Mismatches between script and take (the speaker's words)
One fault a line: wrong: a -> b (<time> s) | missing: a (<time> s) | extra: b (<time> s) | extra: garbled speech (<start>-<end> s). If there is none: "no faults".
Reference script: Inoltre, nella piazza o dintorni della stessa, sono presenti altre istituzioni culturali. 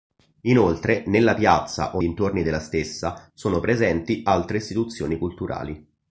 no faults